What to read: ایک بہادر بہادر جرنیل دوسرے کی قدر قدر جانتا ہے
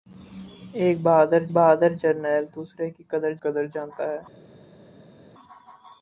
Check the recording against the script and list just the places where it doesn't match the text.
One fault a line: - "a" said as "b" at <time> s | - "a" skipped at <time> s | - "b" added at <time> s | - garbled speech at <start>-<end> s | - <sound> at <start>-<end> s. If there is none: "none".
none